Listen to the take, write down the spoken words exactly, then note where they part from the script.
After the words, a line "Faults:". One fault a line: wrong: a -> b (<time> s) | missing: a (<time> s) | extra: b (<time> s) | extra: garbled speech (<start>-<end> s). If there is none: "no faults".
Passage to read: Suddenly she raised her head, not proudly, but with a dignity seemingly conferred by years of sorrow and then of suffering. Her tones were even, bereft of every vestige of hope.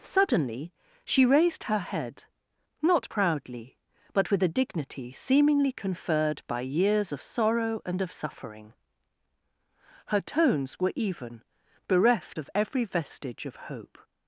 Suddenly she raised her head, not proudly, but with a dignity seemingly conferred by years of sorrow and of suffering. Her tones were even, bereft of every vestige of hope.
Faults:
missing: then (8.0 s)